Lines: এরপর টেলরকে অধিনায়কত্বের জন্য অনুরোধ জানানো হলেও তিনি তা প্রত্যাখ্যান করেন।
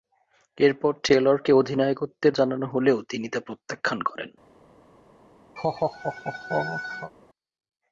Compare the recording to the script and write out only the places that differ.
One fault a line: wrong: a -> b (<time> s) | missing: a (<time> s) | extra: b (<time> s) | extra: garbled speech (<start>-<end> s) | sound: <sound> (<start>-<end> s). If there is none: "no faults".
missing: জন্য অনুরোধ (2.4 s)
sound: laugh (5.6-7.1 s)